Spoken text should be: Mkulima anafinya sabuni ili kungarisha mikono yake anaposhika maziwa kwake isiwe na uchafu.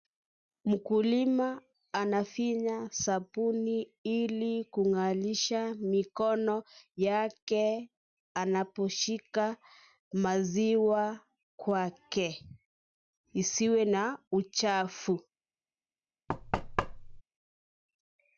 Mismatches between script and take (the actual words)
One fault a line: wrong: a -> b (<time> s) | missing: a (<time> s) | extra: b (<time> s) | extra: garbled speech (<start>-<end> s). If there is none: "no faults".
no faults